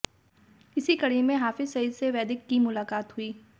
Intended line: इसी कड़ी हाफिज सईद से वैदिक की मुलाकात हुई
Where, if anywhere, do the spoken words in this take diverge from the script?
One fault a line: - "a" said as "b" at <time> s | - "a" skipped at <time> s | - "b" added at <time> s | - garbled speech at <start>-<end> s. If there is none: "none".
- "में" added at 1.2 s